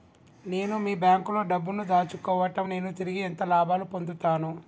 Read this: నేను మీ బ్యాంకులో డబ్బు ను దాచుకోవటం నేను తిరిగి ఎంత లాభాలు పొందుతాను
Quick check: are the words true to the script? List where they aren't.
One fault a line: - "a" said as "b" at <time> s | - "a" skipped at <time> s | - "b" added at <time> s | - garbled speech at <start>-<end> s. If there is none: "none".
none